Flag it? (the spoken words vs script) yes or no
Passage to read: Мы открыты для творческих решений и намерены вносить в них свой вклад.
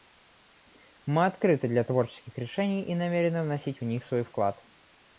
no